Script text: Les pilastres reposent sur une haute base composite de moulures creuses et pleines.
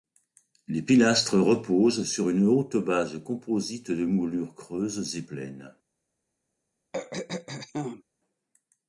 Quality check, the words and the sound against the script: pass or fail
fail